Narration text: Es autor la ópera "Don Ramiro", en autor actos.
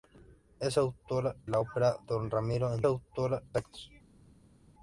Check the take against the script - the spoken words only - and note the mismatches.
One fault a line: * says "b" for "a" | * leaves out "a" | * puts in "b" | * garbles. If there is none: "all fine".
all fine